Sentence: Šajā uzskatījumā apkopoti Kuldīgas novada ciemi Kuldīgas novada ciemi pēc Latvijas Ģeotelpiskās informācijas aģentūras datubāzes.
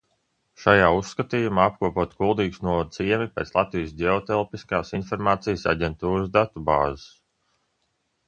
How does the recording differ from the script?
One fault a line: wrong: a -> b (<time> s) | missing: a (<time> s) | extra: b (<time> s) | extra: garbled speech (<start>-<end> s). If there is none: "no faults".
missing: Kuldīgas novada ciemi (3.3 s)